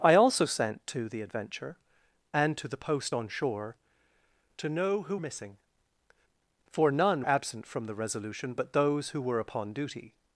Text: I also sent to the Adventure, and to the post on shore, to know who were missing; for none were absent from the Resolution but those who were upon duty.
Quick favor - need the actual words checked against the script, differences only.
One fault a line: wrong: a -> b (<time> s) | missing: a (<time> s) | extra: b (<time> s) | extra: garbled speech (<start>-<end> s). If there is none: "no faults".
missing: were (5.2 s)
missing: were (7.3 s)